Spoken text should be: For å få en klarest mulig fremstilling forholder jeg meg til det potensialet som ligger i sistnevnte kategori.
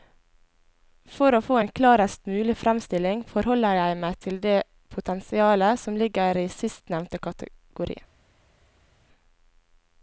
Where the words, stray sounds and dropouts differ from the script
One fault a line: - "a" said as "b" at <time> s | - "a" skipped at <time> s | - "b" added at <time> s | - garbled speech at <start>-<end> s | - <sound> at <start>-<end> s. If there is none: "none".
none